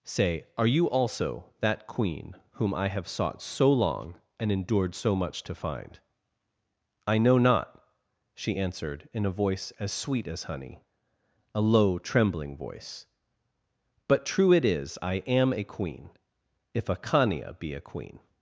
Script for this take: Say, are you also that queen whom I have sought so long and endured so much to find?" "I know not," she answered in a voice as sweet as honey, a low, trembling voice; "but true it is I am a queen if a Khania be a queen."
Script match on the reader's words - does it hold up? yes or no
yes